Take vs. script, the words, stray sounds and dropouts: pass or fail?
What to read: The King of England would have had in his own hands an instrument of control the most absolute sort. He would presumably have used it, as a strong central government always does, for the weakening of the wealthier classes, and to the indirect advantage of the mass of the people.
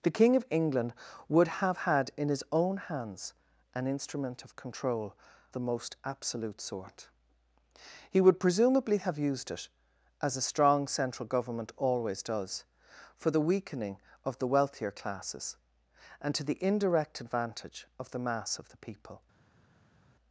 pass